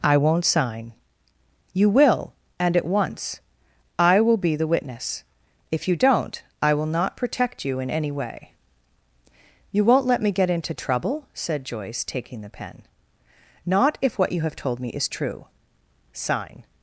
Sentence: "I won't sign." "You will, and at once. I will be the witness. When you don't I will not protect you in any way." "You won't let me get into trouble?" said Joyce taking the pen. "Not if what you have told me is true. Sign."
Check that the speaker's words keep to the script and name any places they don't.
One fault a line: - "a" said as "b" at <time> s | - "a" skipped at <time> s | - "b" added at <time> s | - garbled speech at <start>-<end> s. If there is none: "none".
- "When" said as "If" at 5.7 s